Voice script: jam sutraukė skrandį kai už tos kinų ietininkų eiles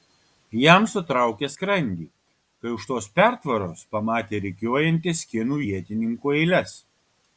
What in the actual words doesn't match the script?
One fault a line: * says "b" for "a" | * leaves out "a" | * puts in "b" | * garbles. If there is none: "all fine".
* puts in "pertvaros pamatė rikiuojantis"